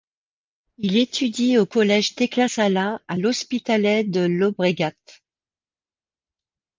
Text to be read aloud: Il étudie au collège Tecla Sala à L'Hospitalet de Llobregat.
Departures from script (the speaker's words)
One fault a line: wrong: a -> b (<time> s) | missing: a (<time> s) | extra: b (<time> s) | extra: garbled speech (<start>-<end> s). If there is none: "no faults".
no faults